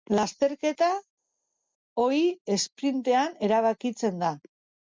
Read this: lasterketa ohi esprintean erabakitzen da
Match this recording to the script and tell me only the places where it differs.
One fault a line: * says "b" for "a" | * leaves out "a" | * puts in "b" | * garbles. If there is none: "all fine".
all fine